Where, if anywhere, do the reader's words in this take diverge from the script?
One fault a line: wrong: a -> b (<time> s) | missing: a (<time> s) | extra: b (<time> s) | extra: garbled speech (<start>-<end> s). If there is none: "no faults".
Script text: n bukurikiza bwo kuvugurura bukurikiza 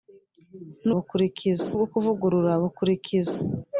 no faults